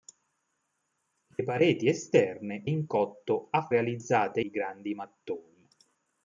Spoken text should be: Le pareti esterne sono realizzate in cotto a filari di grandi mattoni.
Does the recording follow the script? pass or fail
fail